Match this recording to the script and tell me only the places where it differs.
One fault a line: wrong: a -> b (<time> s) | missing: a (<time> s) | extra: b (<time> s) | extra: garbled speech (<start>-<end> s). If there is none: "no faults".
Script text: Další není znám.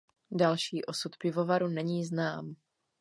extra: osud pivovaru (0.8 s)